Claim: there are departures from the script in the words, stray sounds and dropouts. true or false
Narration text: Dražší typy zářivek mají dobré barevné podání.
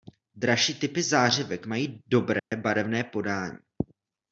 true